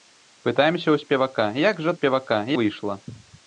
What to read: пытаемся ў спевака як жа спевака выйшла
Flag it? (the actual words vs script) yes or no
no